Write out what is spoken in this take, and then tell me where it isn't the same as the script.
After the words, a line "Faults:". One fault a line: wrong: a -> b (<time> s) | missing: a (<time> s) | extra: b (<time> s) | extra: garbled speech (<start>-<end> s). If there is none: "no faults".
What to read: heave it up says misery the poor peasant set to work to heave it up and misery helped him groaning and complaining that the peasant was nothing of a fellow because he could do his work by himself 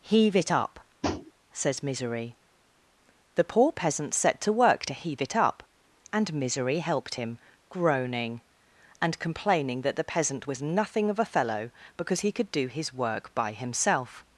heave it up says misery the poor peasant set to work to heave it up and misery helped him groaning and complaining that the peasant was nothing of a fellow because he could do his work by himself
Faults:
no faults